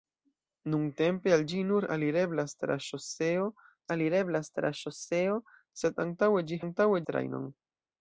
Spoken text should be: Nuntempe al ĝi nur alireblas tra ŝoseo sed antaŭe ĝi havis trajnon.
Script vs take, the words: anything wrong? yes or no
yes